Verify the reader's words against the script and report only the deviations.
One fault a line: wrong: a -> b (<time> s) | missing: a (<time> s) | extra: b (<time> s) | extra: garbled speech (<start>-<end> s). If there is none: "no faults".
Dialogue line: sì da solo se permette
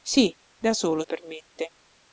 missing: se (1.0 s)